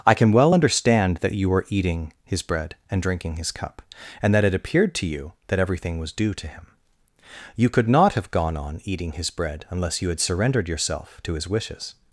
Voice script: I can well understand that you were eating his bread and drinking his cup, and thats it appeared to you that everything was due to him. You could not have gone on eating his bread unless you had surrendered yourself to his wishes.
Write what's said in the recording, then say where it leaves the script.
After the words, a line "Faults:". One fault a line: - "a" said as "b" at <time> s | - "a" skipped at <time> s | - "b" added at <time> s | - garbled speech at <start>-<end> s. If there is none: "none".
I can well understand that you were eating his bread and drinking his cup, and that it appeared to you that everything was due to him. You could not have gone on eating his bread unless you had surrendered yourself to his wishes.
Faults:
- "thats" said as "that" at 4.3 s